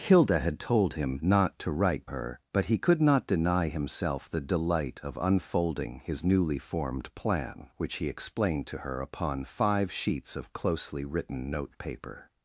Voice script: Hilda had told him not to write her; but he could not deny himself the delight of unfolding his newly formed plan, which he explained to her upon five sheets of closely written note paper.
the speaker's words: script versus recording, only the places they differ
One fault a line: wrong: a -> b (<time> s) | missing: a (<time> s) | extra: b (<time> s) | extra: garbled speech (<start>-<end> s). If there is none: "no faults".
no faults